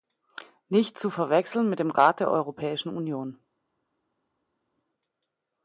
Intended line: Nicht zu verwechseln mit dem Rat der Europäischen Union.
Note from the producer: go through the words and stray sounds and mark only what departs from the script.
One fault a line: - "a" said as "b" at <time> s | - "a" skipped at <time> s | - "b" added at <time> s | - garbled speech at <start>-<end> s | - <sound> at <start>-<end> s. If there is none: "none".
none